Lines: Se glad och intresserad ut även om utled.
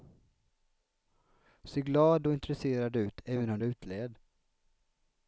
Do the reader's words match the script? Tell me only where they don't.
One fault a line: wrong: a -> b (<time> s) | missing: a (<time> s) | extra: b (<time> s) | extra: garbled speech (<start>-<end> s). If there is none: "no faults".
no faults